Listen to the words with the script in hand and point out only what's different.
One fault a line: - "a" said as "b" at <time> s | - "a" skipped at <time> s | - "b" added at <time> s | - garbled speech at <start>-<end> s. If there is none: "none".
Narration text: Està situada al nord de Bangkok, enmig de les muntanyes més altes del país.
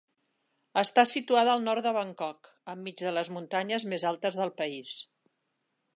none